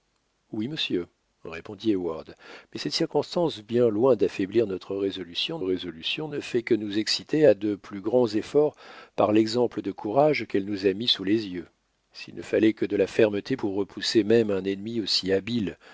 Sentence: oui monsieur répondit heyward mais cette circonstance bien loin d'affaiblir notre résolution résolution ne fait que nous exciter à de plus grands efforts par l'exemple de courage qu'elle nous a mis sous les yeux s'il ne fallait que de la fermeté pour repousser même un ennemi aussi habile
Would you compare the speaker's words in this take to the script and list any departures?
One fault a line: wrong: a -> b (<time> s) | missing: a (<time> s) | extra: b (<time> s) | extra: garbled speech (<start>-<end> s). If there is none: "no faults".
no faults